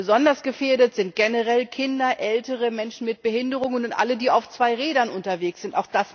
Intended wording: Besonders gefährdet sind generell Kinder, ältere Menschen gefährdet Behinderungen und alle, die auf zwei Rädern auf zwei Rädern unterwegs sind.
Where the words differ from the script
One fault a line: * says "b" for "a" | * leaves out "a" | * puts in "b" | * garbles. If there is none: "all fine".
* says "mit" for "gefährdet"
* leaves out "auf zwei Rädern"